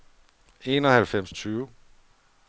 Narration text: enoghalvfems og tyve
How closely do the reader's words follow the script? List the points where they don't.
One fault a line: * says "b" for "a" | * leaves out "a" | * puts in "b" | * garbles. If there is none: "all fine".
all fine